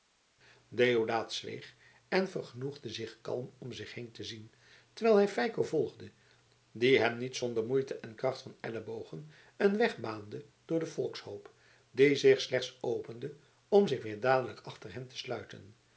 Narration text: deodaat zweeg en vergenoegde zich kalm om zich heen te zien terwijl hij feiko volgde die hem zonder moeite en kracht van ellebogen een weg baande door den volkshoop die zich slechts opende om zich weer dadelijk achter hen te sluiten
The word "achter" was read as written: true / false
true